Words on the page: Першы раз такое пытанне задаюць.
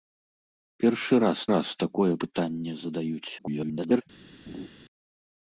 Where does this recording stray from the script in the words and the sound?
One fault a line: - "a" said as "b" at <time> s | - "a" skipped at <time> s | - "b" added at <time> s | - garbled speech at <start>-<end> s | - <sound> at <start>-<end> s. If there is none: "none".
- "раз" added at 1.5 s
- garbled speech at 3.4-4.0 s
- laugh at 4.5-4.7 s